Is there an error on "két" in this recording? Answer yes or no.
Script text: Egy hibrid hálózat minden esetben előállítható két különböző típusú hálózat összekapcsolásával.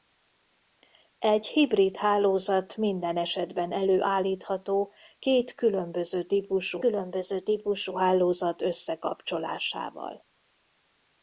no